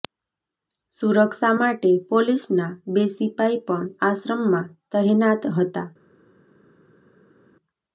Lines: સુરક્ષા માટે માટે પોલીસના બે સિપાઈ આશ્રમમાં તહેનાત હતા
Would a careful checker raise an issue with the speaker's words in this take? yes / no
yes